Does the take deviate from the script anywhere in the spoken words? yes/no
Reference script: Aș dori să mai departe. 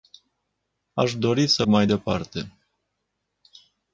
no